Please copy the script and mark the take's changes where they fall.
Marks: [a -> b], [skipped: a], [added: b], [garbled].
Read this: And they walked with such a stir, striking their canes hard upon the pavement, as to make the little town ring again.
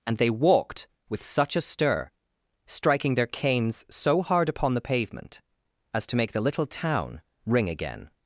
And they walked with such a stir, striking their canes [added: so] hard upon the pavement, as to make the little town ring again.